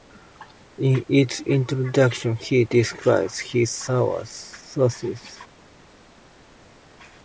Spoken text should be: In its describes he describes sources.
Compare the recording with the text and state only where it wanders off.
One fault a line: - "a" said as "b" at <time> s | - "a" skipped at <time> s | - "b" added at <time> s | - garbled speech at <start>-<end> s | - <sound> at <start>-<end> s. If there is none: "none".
- "describes" said as "introduction" at 1.4 s
- "his" added at 3.4 s